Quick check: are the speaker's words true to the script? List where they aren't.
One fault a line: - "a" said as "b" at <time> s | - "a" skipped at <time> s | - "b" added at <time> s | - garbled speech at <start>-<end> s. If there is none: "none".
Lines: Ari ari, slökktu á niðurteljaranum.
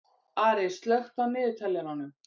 - "ari" skipped at 0.7 s